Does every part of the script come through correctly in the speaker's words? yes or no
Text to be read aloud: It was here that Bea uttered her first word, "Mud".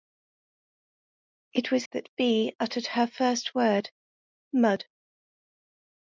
no